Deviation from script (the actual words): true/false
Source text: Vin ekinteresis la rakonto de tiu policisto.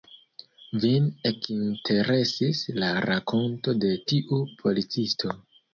false